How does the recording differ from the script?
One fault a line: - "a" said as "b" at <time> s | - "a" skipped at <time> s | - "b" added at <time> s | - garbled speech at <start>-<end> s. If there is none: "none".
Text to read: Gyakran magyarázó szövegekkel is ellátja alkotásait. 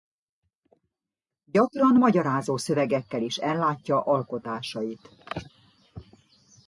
none